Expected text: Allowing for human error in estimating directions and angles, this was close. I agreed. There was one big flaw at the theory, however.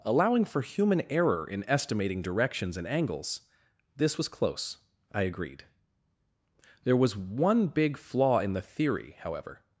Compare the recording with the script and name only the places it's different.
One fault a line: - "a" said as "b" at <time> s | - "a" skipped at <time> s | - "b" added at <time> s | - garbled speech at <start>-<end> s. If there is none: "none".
- "at" said as "in" at 8.4 s